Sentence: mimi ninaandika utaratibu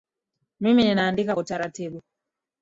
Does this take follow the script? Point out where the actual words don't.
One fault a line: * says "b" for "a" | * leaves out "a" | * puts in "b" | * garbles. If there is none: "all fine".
all fine